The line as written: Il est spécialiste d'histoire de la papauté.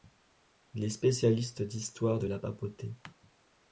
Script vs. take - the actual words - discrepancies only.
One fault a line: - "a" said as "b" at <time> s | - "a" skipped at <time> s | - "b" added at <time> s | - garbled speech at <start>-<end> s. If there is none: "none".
none